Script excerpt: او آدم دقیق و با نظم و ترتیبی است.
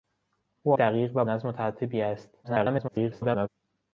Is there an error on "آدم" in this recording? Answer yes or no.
yes